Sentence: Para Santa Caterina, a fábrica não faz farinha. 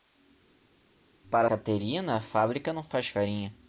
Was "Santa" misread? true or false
true